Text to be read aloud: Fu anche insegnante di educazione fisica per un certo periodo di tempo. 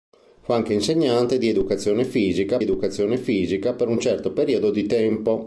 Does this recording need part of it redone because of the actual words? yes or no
yes